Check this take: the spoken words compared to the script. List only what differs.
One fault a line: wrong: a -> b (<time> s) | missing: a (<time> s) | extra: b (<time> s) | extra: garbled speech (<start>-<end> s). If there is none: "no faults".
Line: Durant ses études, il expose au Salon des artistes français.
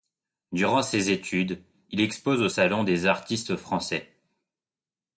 no faults